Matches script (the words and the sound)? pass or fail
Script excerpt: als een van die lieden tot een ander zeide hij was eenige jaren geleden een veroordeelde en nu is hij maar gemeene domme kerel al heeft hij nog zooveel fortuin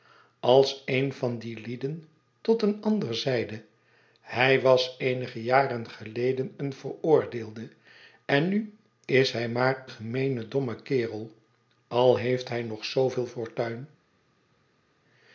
pass